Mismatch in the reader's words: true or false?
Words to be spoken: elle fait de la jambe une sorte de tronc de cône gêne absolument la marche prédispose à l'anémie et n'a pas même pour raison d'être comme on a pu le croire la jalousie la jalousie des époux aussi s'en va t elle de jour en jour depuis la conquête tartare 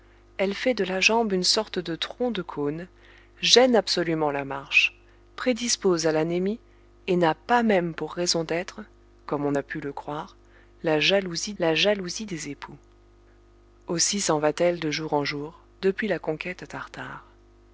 false